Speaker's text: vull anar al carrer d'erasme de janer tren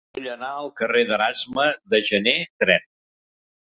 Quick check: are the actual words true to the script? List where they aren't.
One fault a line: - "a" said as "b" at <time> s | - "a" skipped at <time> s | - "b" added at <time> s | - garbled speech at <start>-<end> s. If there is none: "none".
none